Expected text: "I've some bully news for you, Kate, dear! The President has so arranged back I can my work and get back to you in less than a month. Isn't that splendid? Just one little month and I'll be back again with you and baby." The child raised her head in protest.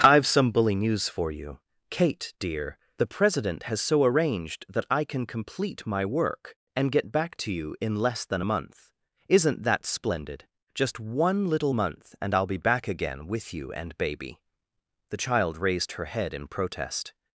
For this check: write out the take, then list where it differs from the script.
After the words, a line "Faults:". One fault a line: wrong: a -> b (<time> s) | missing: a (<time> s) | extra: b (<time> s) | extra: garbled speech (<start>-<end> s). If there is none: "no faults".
"I've some bully news for you, Kate, dear! The President has so arranged that I can complete my work and get back to you in less than a month. Isn't that splendid? Just one little month and I'll be back again with you and baby." The child raised her head in protest.
Faults:
wrong: back -> that (4.7 s)
extra: complete (5.3 s)